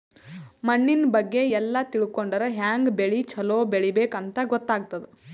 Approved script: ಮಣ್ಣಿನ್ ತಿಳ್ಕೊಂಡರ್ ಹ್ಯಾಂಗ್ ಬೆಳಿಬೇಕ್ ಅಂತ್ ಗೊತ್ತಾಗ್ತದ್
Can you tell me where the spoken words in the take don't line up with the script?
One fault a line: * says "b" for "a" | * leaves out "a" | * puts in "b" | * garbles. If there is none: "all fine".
* puts in "ಬಗ್ಗೆ ಎಲ್ಲ"
* puts in "ಬೆಳಿ ಛಲೋ"